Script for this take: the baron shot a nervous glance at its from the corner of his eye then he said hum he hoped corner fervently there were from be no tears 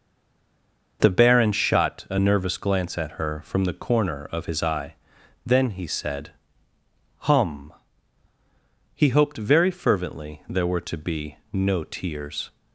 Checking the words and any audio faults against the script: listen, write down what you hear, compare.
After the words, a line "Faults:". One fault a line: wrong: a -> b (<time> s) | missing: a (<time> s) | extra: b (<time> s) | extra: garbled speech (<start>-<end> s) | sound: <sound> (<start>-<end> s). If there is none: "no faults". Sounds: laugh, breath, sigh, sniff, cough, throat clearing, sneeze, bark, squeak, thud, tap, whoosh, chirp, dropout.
the baron shot a nervous glance at her from the corner of his eye then he said hum he hoped very fervently there were to be no tears
Faults:
wrong: its -> her (3.1 s)
wrong: corner -> very (9.4 s)
wrong: from -> to (10.8 s)